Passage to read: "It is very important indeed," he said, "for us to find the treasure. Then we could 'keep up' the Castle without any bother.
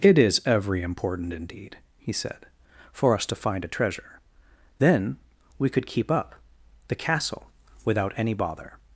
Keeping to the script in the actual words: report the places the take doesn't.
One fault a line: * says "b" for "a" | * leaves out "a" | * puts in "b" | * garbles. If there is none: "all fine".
* says "every" for "very"
* says "a" for "the"